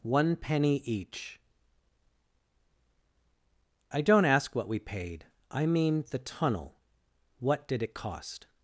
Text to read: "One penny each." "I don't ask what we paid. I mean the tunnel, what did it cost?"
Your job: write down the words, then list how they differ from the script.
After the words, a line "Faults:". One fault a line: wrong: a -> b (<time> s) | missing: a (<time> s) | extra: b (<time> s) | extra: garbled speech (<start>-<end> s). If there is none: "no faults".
"One penny each." "I don't ask what we paid. I mean the tunnel, what did it cost?"
Faults:
no faults